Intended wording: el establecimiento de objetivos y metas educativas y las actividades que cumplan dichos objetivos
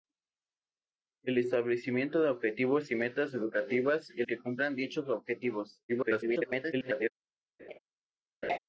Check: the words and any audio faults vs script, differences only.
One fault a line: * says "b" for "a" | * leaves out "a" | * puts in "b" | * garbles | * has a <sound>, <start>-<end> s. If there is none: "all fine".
* leaves out "las actividades"
* garbles
* has a laugh, 7.6-7.8 s
* has a laugh, 8.4-8.6 s